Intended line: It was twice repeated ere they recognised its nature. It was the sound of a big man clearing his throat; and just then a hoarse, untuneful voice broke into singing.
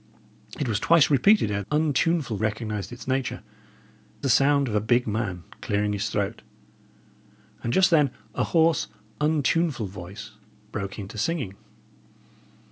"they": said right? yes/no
no